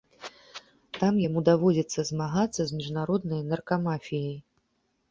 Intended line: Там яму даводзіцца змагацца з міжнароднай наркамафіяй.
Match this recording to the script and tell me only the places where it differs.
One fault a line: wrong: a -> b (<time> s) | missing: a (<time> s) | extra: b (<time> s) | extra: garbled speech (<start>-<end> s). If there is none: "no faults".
no faults